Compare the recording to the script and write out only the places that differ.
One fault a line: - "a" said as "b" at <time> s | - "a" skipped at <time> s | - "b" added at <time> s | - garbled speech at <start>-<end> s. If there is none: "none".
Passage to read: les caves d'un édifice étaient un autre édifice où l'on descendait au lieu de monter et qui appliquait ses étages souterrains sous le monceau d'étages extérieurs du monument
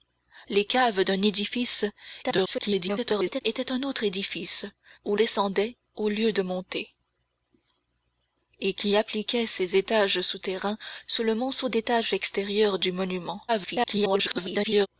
- garbled speech at 2.2-3.4 s
- "l'on" skipped at 5.2 s
- garbled speech at 13.5-14.9 s